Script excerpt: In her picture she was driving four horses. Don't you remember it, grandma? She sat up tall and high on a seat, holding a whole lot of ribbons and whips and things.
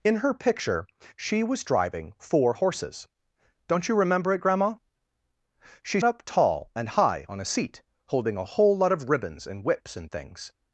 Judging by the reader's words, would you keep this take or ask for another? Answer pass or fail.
fail